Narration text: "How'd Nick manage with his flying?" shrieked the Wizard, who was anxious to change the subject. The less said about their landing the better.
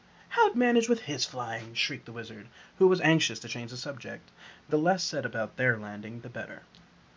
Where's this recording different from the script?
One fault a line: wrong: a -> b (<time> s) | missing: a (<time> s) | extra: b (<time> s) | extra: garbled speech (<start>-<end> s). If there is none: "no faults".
missing: Nick (0.6 s)